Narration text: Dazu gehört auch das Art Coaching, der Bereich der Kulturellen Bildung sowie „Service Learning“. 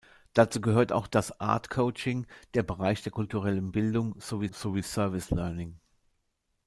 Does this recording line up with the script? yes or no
no